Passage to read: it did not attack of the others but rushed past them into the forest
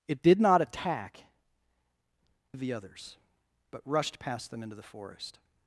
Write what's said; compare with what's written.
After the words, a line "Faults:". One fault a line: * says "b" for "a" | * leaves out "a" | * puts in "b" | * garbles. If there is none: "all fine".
it did not attack of the others but rushed past them into the forest
Faults:
all fine